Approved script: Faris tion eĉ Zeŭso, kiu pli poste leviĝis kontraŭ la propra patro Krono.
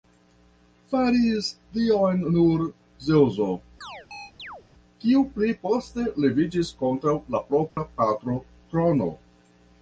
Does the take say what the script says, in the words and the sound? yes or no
no